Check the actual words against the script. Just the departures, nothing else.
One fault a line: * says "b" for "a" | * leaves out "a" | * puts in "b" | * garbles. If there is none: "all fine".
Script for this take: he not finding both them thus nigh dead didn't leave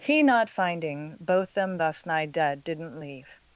all fine